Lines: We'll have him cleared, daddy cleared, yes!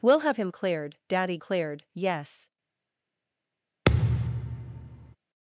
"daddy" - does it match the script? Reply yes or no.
yes